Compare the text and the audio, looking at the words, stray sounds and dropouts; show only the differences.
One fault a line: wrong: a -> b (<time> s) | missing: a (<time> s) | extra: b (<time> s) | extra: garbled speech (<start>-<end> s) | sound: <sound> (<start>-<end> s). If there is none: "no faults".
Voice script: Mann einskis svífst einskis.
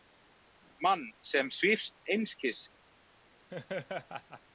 wrong: einskis -> sem (1.2 s)
sound: laugh (3.5-4.4 s)